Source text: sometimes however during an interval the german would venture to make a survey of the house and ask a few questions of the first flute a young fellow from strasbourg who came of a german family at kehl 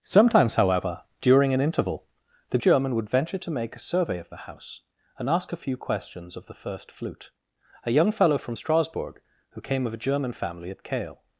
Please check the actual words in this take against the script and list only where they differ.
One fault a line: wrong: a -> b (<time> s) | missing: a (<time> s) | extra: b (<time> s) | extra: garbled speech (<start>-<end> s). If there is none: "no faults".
no faults